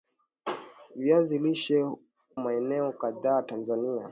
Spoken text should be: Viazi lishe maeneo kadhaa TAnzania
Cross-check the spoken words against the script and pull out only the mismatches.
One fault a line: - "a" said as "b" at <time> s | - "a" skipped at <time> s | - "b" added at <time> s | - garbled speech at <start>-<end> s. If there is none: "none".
none